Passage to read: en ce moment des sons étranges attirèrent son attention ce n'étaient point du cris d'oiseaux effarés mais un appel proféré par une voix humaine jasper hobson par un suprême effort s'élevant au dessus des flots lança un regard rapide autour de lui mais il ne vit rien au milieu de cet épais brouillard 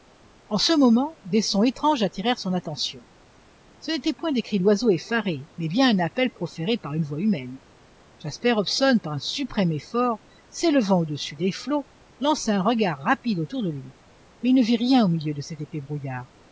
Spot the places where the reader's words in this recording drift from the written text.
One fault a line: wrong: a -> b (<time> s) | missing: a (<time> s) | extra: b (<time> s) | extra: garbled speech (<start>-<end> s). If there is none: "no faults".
wrong: du -> des (4.3 s)
extra: bien (5.7 s)